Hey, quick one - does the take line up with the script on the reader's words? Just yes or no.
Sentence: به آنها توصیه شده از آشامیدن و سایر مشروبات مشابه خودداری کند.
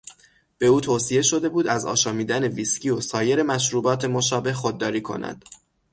no